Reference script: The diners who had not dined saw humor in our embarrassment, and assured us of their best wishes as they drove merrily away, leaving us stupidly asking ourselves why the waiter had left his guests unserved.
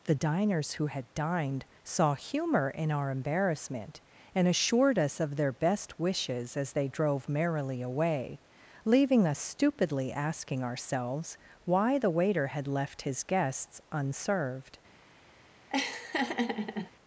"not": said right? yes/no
no